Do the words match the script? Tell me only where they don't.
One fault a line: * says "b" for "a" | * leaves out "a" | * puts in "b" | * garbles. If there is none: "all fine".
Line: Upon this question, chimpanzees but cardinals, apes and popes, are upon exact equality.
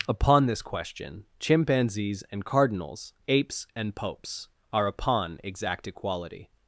* says "and" for "but"